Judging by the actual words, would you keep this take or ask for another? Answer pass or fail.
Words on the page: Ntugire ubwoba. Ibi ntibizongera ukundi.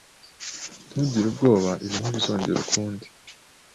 pass